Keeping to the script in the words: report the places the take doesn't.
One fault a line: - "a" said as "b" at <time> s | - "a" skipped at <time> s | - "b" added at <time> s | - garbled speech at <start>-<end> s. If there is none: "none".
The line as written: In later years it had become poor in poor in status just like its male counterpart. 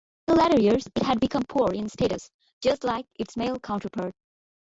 - "poor in" skipped at 1.9 s